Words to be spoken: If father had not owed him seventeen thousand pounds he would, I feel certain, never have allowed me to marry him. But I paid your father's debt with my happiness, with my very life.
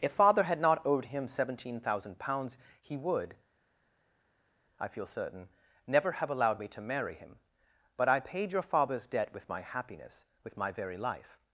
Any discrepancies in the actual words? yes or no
no